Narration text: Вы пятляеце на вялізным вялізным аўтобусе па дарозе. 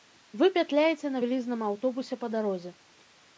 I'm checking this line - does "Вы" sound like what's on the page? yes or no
yes